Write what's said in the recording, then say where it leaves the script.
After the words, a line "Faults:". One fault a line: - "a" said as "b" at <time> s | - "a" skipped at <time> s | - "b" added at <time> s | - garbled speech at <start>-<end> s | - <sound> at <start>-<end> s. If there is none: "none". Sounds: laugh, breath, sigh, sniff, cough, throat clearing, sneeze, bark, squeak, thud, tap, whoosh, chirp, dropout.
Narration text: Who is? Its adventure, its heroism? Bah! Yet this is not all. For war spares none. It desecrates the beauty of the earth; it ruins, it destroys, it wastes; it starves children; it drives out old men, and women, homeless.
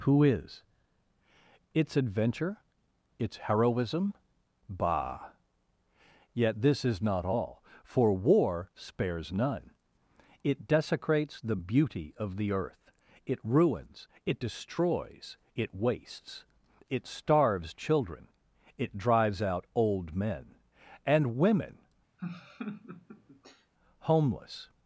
Who is? Its adventure, its heroism? Bah! Yet this is not all. For war spares none. It desecrates the beauty of the earth; it ruins, it destroys, it wastes; it starves children; it drives out old men, and women, homeless.
Faults:
- laugh at 22.2-23.7 s